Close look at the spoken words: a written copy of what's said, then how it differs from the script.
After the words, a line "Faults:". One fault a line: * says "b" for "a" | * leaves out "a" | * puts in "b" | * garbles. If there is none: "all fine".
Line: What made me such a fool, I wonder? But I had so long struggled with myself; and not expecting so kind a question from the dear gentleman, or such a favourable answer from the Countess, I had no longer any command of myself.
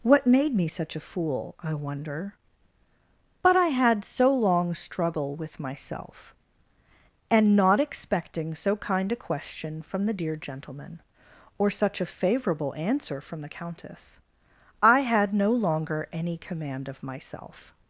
What made me such a fool, I wonder? But I had so long struggle with myself; and not expecting so kind a question from the dear gentleman, or such a favourable answer from the Countess, I had no longer any command of myself.
Faults:
* says "struggle" for "struggled"